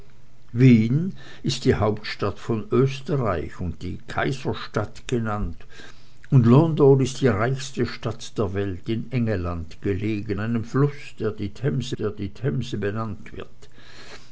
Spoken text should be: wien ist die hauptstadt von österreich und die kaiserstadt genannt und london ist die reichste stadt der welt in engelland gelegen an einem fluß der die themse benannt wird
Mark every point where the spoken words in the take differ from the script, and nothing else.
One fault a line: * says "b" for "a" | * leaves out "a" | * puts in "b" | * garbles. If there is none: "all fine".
* leaves out "an"
* puts in "der die themse"